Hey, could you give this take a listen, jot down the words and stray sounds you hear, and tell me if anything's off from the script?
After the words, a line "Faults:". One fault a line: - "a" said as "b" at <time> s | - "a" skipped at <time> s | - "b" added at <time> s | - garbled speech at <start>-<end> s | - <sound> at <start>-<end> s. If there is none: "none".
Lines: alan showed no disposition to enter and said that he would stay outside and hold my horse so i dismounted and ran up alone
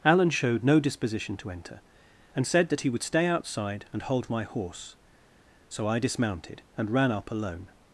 alan showed no disposition to enter and said that he would stay outside and hold my horse so i dismounted and ran up alone
Faults:
none